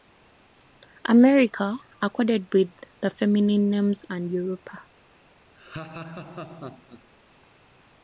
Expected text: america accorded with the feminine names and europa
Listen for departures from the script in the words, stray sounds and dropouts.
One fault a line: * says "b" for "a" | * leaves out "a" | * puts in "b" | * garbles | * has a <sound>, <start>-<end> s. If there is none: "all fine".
* has a laugh, 5.6-7.1 s